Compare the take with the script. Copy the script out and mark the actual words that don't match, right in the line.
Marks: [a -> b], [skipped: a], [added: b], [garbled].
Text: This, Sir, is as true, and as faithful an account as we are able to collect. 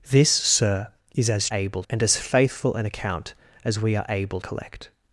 This, Sir, is as [true, -> able] and as faithful an account as we are able [skipped: to] collect.